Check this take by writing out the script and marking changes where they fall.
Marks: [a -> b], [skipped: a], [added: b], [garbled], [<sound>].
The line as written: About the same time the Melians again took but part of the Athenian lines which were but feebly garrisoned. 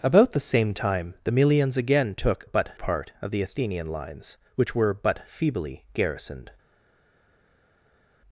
About the same time the Melians again took but part of the Athenian lines which were but feebly garrisoned.